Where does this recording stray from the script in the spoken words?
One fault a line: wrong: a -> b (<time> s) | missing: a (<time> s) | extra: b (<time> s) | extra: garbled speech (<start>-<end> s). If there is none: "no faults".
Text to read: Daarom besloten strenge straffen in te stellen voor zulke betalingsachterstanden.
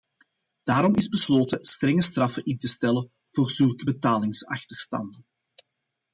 extra: is (0.9 s)